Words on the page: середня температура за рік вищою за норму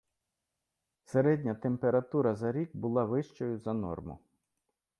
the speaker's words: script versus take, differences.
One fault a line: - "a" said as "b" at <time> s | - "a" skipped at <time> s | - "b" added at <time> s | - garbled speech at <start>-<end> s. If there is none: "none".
- "була" added at 2.7 s